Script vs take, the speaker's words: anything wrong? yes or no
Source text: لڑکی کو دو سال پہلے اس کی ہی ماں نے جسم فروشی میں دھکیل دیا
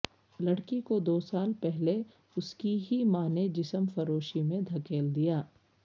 no